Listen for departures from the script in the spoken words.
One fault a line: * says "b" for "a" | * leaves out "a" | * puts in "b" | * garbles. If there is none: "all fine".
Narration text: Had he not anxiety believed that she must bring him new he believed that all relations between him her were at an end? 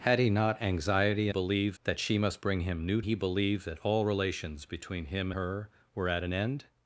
all fine